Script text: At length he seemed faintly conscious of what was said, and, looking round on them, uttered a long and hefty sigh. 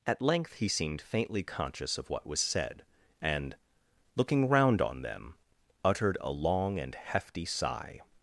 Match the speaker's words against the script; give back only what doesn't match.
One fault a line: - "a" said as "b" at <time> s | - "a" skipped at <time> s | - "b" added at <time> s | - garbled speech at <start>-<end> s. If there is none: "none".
none